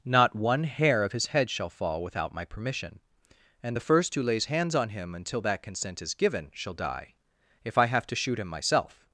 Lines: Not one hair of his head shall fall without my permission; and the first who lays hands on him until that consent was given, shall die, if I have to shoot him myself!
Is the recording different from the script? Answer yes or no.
yes